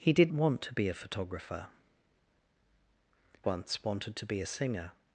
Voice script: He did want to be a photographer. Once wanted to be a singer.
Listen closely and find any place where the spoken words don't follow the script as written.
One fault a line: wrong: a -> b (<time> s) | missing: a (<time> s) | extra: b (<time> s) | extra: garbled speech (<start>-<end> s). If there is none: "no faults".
no faults